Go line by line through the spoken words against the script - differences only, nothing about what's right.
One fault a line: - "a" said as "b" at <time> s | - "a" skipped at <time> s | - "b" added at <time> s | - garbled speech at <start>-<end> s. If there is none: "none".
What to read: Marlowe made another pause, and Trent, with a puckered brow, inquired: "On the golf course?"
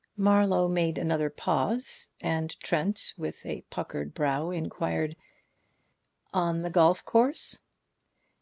none